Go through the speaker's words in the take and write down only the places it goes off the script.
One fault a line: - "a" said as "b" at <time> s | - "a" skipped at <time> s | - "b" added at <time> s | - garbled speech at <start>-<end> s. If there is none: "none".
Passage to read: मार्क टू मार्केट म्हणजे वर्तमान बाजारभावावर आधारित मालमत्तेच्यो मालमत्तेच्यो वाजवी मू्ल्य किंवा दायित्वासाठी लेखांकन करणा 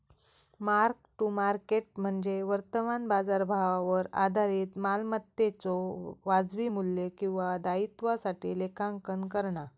- "मालमत्तेच्यो" skipped at 5.8 s